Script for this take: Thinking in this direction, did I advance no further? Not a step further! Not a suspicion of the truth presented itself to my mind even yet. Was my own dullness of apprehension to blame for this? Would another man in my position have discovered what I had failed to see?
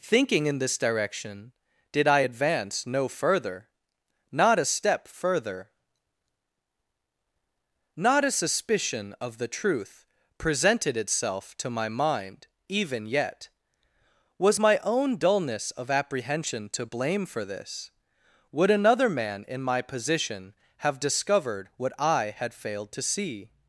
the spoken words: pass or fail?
pass